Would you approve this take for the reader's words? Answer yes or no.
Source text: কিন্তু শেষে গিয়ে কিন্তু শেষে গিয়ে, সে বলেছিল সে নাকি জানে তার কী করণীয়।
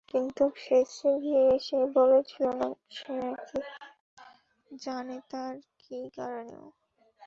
no